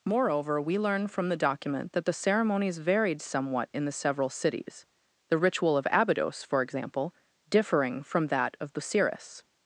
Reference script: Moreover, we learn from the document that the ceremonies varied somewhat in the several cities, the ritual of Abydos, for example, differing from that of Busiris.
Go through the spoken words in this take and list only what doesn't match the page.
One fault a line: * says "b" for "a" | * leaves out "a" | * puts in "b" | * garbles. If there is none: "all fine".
all fine